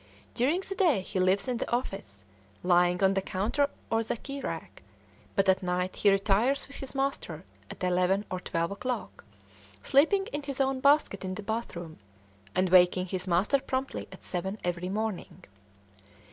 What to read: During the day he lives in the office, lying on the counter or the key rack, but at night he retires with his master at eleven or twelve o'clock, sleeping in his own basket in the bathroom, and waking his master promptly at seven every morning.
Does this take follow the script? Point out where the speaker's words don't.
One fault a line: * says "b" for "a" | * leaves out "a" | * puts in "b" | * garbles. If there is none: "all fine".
all fine